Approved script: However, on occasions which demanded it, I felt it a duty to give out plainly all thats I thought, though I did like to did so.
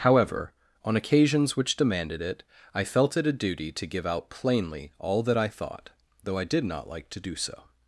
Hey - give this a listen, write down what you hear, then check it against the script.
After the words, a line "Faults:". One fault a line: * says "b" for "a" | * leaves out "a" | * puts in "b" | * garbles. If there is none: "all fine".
However, on occasions which demanded it, I felt it a duty to give out plainly all that I thought, though I did not like to do so.
Faults:
* says "that" for "thats"
* puts in "not"
* says "do" for "did"